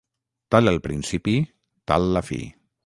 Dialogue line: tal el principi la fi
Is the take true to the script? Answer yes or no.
no